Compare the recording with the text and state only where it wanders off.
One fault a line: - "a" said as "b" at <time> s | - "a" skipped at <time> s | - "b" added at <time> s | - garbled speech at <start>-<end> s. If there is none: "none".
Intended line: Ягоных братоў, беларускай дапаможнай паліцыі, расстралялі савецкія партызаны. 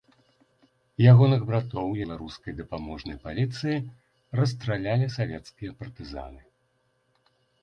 none